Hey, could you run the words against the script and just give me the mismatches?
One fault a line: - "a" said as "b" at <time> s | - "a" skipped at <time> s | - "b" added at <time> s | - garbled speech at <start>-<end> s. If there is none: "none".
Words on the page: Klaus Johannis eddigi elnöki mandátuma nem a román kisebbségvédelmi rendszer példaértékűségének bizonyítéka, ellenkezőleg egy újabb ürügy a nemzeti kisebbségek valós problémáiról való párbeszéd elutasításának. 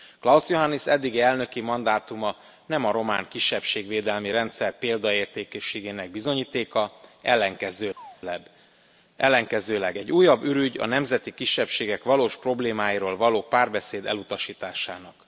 none